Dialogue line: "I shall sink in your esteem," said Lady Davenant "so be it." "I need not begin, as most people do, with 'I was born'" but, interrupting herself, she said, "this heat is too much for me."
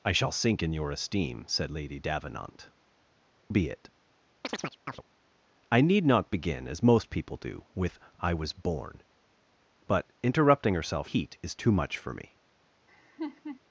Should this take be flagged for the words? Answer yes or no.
yes